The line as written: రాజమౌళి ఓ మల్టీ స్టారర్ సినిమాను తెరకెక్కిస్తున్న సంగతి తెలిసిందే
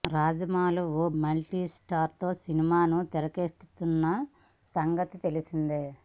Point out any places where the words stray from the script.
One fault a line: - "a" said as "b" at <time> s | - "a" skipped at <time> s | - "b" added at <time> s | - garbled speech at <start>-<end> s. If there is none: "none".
none